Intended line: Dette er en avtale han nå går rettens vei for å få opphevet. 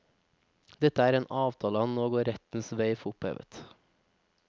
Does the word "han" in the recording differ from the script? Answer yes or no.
no